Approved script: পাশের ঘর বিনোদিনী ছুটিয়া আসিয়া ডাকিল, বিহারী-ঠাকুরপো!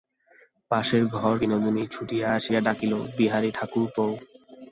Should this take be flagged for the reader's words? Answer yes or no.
no